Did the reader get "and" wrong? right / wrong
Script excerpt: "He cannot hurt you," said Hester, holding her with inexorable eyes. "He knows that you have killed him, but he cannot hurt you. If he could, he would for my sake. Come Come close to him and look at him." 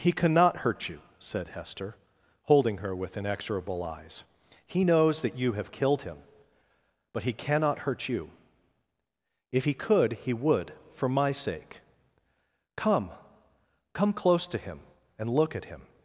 right